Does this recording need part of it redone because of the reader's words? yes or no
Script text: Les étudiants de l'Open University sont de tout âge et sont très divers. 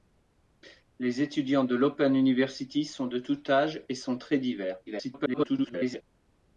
yes